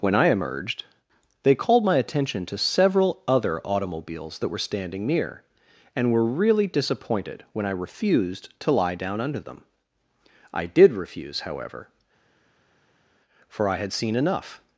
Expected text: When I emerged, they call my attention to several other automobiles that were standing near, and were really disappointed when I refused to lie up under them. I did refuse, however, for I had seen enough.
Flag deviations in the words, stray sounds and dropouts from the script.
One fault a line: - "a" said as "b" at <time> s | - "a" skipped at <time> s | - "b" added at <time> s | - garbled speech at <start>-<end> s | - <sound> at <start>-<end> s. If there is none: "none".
- "call" said as "called" at 1.5 s
- "up" said as "down" at 8.9 s